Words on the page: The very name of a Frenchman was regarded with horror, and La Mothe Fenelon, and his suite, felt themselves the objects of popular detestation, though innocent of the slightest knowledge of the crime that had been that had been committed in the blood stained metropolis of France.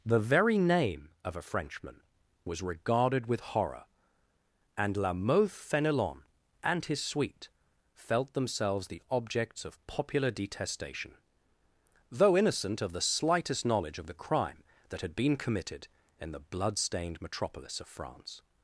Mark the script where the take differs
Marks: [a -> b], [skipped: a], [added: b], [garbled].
The very name of a Frenchman was regarded with horror, and La Mothe Fenelon, and his suite, felt themselves the objects of popular detestation, though innocent of the slightest knowledge of the crime that had been [skipped: that had been] committed in the blood stained metropolis of France.